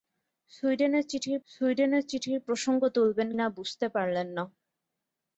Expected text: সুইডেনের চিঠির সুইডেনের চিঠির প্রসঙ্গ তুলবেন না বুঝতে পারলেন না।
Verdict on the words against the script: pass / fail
pass